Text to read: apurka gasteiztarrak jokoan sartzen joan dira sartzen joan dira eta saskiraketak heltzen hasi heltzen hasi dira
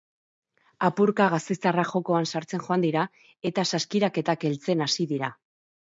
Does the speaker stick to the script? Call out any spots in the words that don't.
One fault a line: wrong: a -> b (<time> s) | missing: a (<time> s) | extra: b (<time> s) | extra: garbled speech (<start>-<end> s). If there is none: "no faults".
missing: sartzen joan dira (3.1 s)
missing: heltzen hasi (5.1 s)